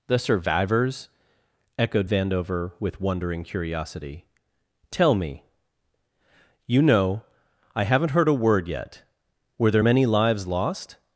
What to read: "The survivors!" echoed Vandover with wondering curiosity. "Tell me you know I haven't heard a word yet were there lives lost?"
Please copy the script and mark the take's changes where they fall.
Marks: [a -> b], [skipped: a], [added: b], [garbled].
"The survivors!" echoed Vandover with wondering curiosity. "Tell me you know I haven't heard a word yet were there [added: many] lives lost?"